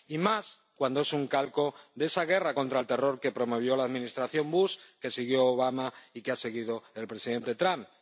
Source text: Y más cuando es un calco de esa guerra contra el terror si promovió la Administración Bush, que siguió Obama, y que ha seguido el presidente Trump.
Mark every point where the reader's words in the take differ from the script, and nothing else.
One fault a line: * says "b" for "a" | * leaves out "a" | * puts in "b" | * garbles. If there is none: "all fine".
* says "que" for "si"